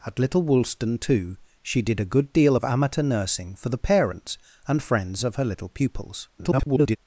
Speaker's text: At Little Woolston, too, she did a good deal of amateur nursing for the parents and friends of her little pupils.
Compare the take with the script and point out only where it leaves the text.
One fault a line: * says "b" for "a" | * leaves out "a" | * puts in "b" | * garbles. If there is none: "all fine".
* garbles